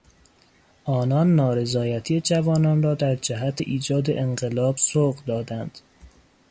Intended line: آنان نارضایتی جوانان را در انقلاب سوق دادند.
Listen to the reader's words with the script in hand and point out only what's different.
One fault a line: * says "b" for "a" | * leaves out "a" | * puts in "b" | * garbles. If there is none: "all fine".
* puts in "جهت ایجاد"